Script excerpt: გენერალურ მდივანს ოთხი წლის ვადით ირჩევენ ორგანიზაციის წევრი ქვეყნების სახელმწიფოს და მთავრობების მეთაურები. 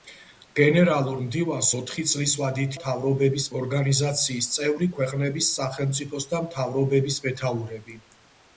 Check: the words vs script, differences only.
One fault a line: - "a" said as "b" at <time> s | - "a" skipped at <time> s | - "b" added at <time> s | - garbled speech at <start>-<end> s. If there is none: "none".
- "ირჩევენ" said as "მთავრობების" at 2.8 s